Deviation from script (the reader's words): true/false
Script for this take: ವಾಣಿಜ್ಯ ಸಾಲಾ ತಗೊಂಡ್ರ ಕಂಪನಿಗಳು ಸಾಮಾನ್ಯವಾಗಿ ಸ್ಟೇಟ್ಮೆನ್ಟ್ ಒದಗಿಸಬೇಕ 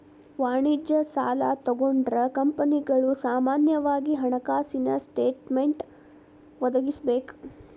true